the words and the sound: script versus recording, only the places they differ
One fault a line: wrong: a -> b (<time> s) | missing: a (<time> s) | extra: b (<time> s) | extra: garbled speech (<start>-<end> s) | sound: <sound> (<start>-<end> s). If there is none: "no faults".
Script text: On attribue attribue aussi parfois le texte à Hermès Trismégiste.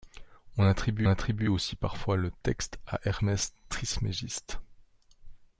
no faults